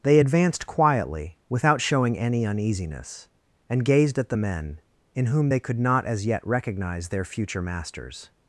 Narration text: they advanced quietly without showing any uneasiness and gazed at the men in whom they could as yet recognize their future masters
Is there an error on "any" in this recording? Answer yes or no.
no